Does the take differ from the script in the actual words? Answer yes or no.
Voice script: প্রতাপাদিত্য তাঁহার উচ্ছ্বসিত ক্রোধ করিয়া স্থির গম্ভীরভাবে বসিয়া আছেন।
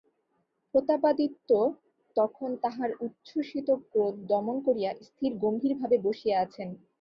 yes